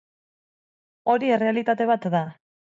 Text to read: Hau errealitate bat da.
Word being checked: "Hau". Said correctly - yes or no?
no